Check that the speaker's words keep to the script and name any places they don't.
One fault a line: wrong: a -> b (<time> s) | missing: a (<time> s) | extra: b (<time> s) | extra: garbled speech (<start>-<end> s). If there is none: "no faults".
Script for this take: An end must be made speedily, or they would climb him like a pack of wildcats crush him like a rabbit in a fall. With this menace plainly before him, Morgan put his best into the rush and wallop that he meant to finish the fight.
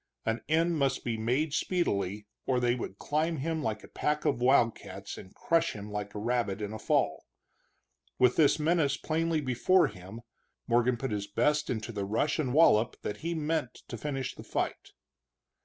extra: and (5.2 s)